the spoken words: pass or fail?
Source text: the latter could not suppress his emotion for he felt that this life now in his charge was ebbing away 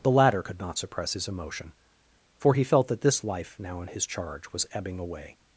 pass